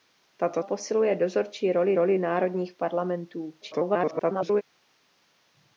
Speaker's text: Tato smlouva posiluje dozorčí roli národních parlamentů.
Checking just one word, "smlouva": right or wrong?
wrong